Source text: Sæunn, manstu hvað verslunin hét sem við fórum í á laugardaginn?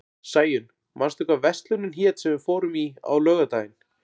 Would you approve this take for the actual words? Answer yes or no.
yes